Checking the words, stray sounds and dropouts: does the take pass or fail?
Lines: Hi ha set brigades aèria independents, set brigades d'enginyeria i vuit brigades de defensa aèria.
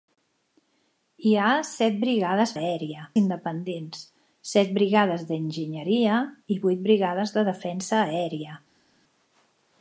pass